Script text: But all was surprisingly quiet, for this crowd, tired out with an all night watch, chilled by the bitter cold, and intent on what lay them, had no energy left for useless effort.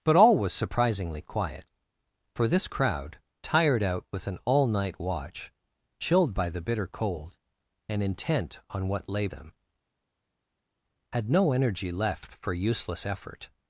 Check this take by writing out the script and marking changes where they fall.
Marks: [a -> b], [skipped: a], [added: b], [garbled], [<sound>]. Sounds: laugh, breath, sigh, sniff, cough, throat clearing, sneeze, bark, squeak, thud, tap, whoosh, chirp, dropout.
But all was surprisingly quiet, for this crowd, tired out with an all night watch, chilled by the bitter cold, and intent on what lay them, had no energy left for useless effort.